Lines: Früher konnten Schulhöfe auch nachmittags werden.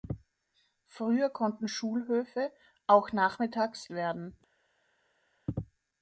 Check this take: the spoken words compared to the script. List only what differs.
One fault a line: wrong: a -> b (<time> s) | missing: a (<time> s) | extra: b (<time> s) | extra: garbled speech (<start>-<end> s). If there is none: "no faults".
no faults